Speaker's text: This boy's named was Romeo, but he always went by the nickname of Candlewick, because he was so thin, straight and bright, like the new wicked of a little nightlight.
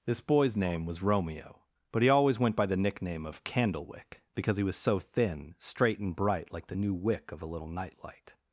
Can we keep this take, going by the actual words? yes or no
no